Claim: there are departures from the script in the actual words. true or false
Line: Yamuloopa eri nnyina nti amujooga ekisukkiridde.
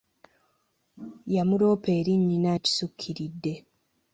true